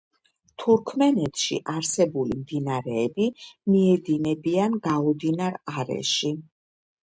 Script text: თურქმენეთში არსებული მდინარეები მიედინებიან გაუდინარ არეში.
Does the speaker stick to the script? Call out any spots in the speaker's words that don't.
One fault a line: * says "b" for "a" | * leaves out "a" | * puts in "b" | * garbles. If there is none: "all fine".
all fine